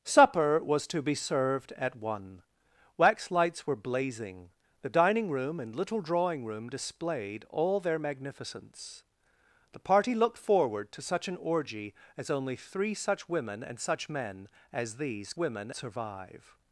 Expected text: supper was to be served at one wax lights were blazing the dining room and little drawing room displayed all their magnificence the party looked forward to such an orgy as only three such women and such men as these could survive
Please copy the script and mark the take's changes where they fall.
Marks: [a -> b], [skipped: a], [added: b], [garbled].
supper was to be served at one wax lights were blazing the dining room and little drawing room displayed all their magnificence the party looked forward to such an orgy as only three such women and such men as these [could -> women] survive